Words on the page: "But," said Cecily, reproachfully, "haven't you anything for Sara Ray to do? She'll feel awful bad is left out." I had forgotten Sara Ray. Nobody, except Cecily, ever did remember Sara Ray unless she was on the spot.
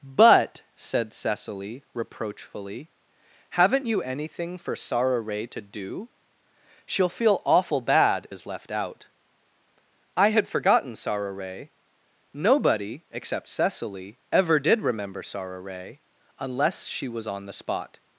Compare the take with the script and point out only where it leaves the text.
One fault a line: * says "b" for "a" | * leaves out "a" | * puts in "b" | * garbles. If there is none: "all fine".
all fine